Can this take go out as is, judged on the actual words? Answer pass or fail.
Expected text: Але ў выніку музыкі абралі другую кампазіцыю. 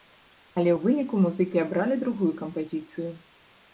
pass